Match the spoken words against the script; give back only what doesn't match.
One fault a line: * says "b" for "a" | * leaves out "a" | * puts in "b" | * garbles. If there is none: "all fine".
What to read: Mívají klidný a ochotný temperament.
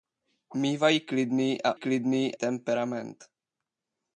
* says "klidný" for "ochotný"